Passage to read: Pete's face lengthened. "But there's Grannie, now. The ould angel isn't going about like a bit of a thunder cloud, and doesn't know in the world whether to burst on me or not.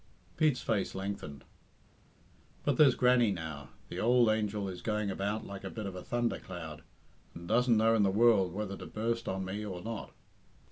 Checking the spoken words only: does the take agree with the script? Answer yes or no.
no